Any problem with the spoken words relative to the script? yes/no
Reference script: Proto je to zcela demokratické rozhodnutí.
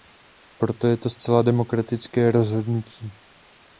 no